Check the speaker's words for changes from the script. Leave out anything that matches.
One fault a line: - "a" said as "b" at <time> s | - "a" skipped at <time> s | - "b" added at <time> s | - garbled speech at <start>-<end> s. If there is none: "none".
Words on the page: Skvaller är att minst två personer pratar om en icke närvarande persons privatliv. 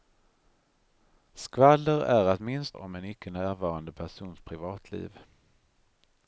- "två personer pratar" skipped at 2.8 s